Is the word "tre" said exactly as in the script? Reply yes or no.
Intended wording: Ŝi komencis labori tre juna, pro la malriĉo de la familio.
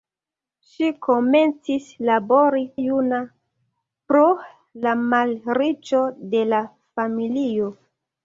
no